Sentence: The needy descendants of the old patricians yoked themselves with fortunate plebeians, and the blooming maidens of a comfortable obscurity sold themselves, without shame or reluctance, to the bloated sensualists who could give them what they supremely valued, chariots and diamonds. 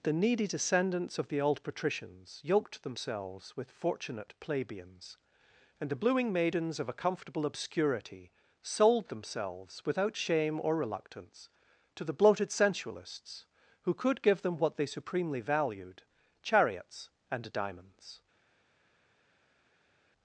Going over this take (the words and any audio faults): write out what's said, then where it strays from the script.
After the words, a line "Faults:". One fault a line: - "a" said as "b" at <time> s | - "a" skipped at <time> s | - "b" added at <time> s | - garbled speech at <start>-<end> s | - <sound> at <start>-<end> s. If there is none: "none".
The needy descendants of the old patricians yoked themselves with fortunate plebeians, and the blooming maidens of a comfortable obscurity sold themselves, without shame or reluctance, to the bloated sensualists who could give them what they supremely valued, chariots and diamonds.
Faults:
none